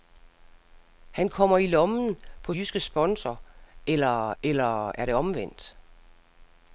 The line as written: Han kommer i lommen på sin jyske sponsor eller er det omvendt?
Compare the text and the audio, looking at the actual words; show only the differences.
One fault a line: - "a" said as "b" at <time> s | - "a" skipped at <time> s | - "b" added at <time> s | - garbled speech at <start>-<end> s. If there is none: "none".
- "sin" skipped at 2.5 s
- "eller" added at 4.4 s